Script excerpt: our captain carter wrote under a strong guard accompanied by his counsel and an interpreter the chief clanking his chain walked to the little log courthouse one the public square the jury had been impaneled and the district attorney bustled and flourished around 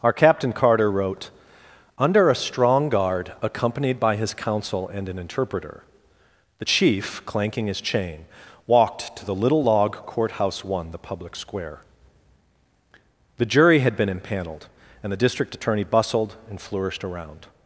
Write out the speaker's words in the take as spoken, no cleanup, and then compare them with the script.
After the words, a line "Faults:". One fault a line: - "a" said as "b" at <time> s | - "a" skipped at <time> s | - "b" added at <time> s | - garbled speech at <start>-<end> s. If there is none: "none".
our captain carter wrote under a strong guard accompanied by his counsel and an interpreter the chief clanking his chain walked to the little log courthouse one the public square the jury had been impaneled and the district attorney bustled and flourished around
Faults:
none